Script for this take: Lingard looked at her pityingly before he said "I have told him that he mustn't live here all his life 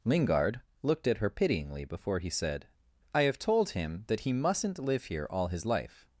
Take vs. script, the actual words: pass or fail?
pass